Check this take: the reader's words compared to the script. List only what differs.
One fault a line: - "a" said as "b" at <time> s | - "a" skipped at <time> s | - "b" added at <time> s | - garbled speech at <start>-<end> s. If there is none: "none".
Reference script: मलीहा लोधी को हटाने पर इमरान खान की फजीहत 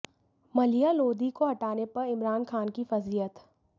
none